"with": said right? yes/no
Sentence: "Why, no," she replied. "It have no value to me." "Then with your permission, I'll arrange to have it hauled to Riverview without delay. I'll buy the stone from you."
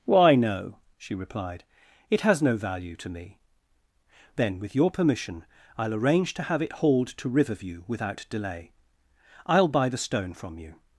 yes